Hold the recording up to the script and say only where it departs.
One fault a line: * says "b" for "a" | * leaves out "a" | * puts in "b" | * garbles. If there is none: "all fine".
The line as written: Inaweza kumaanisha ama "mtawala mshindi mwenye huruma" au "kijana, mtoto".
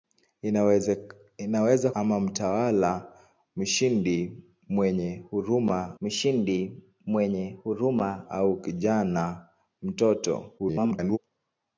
* leaves out "kumaanisha"
* puts in "mshindi mwenye huruma"
* garbles